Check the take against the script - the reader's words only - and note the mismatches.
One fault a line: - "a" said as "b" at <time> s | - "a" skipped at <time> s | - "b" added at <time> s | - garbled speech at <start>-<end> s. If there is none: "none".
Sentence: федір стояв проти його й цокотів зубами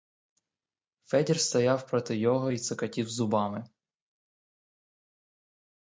none